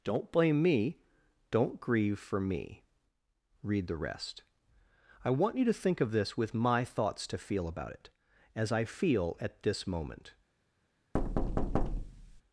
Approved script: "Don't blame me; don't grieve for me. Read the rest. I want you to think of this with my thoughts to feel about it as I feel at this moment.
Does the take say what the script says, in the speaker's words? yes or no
yes